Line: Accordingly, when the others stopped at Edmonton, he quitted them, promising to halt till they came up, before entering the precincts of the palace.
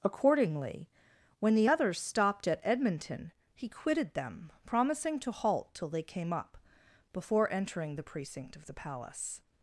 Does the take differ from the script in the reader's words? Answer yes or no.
yes